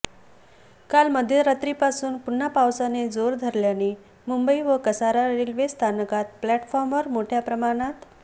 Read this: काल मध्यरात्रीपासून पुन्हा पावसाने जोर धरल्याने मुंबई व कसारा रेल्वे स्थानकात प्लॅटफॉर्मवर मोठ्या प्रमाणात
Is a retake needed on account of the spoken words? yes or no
no